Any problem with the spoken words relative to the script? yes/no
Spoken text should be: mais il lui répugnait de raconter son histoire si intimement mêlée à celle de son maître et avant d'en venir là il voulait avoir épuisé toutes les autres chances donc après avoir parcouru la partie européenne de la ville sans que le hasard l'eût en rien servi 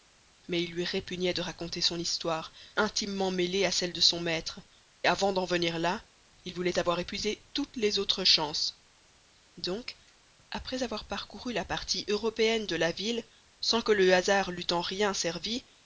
yes